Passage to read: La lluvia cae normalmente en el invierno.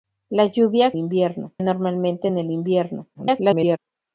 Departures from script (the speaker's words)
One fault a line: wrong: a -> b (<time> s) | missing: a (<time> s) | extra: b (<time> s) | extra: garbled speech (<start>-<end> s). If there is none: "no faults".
wrong: cae -> invierno (1.0 s)
extra: garbled speech (3.1-3.8 s)